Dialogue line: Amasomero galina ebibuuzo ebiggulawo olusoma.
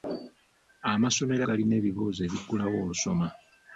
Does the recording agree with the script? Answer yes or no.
yes